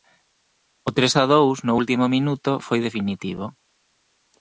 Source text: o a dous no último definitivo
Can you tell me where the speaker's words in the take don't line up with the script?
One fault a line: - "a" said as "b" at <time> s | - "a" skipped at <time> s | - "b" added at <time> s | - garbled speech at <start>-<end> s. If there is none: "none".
- "tres" added at 1.0 s
- "minuto foi" added at 2.1 s